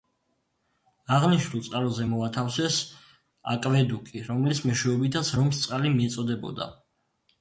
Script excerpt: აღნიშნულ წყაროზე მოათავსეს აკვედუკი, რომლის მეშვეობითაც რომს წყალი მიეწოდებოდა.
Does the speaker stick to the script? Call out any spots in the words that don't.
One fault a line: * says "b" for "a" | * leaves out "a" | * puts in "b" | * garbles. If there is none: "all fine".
all fine